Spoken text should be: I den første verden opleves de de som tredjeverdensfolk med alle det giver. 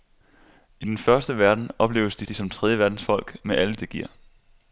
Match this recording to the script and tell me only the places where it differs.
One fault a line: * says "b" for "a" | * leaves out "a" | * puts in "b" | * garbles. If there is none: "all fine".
all fine